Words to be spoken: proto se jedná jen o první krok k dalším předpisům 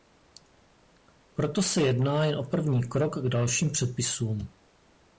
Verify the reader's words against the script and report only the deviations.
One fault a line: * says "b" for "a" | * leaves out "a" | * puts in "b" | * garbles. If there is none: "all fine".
all fine